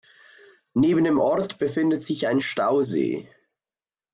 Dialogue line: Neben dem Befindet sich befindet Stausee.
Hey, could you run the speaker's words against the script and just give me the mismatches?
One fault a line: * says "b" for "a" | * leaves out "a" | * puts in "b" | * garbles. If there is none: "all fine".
* puts in "Ort"
* says "ein" for "befindet"